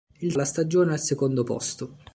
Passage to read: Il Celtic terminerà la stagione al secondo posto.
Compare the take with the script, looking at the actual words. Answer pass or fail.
fail